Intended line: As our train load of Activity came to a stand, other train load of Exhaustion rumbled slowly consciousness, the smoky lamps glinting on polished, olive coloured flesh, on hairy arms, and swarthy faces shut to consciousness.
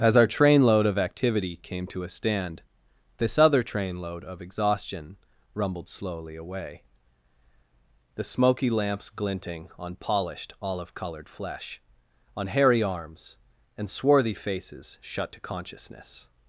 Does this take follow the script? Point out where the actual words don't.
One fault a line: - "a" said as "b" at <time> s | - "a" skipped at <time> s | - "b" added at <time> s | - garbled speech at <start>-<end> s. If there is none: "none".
- "this" added at 3.2 s
- "consciousness" said as "away" at 6.4 s